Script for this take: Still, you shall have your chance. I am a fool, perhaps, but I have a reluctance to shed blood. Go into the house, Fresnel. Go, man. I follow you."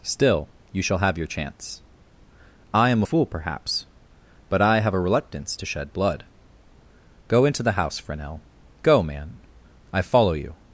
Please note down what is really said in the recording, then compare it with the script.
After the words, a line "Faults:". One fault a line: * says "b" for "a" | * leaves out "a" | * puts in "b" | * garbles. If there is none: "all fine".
Still, you shall have your chance. I am a fool, perhaps, but I have a reluctance to shed blood. Go into the house, Fresnel. Go, man. I follow you."
Faults:
all fine